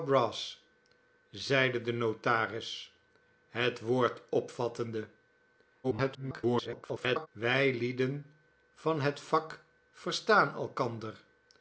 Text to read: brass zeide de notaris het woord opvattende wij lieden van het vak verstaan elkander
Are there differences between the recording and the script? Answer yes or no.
yes